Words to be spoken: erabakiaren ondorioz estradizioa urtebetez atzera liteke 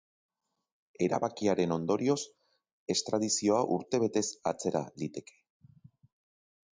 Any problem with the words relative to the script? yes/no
no